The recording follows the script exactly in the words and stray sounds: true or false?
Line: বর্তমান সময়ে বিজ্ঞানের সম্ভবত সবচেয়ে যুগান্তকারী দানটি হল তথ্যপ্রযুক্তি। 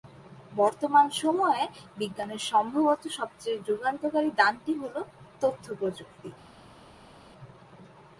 true